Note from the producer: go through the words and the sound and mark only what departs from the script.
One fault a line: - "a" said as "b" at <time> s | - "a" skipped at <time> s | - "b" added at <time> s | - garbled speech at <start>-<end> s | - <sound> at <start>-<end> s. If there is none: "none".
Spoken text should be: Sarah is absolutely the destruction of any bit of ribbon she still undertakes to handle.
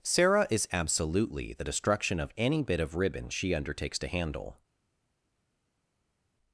- "still" skipped at 3.5 s